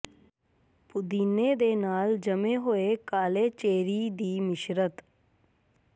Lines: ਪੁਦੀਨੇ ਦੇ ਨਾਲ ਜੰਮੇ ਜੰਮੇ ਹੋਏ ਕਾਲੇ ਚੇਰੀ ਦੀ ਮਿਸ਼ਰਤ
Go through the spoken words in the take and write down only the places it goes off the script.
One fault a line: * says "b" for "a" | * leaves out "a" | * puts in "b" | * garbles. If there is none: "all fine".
* leaves out "ਜੰਮੇ"